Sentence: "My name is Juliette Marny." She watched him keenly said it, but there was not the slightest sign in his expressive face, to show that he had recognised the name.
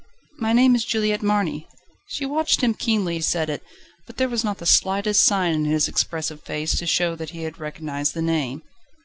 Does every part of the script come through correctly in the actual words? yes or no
yes